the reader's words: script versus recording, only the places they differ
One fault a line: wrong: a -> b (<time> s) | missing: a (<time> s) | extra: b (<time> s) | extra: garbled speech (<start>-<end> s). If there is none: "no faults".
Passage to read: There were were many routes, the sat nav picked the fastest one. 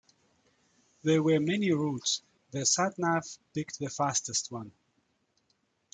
missing: were (1.4 s)